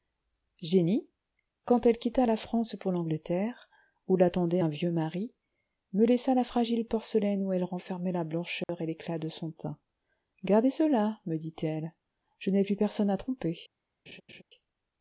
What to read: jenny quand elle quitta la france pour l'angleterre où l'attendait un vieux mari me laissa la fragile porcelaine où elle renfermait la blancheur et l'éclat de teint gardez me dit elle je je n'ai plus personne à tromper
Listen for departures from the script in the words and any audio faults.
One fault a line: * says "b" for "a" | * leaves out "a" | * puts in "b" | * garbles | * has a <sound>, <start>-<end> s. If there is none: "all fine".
* has a dropout, 8.6-8.7 s
* puts in "son"
* puts in "cela"
* leaves out "je"
* has a laugh, 14.1-14.4 s